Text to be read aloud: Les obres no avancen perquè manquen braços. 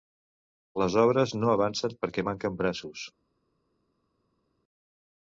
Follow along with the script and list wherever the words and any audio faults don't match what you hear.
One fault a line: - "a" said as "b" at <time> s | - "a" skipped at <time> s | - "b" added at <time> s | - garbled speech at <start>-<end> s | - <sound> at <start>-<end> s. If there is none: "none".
none